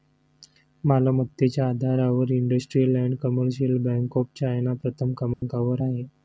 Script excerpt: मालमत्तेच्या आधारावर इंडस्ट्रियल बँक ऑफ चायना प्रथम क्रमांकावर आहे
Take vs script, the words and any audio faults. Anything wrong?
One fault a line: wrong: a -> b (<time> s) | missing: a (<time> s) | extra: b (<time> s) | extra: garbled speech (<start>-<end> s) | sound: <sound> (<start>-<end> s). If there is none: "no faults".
extra: अँड कमर्शियल (3.0 s)
sound: dropout (5.3-5.4 s)